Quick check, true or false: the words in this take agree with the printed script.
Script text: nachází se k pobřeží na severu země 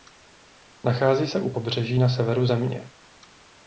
false